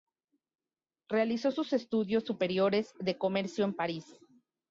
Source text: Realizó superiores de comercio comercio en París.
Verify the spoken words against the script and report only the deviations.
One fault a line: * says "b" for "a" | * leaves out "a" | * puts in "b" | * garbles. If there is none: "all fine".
* puts in "sus estudios"
* leaves out "comercio"